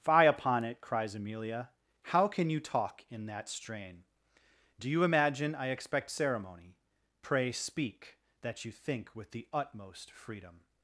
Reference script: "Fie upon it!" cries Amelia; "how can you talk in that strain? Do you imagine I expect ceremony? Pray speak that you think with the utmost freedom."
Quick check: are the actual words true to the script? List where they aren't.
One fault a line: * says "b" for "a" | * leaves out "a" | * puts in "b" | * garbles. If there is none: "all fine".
all fine